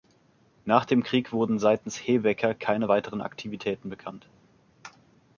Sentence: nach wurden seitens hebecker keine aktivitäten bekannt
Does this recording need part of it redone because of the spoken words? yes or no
yes